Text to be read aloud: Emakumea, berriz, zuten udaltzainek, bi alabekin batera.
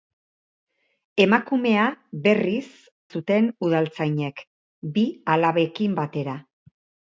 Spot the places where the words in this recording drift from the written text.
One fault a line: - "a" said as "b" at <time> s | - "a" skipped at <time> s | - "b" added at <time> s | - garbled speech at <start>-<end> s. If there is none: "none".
none